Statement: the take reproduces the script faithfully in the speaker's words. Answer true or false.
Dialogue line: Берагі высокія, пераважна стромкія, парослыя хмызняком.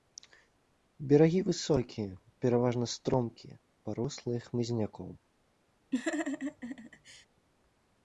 true